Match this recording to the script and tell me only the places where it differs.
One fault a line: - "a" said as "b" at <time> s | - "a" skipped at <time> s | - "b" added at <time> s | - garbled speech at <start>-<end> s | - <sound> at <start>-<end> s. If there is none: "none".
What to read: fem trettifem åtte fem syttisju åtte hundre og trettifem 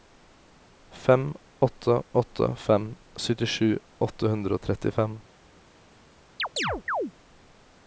- "trettifem" said as "åtte" at 1.6 s
- chirp at 6.4-7.1 s